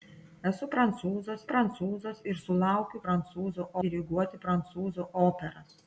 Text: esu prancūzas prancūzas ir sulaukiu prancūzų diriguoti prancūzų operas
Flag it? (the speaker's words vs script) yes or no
no